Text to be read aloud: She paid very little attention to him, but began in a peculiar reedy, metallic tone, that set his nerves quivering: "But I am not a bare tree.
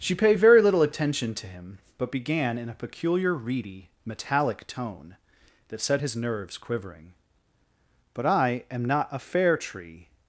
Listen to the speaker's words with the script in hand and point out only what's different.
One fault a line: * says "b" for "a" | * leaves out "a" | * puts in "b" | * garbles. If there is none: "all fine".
* says "fair" for "bare"